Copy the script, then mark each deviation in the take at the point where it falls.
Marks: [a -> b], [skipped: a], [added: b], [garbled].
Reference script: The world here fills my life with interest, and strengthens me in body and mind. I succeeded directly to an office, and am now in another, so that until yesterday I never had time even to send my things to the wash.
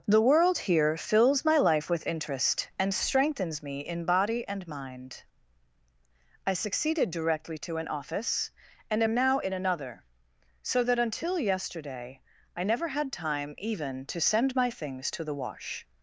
The world here fills my life with interest, and strengthens me in body and mind. I succeeded directly to an office, and am now in another, so that until yesterday I never had time even to send my things to the wash.